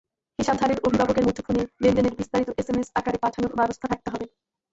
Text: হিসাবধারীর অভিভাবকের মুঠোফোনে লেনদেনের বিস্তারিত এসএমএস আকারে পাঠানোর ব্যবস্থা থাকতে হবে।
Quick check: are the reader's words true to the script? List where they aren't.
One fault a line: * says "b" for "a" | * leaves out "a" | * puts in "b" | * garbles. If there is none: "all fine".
all fine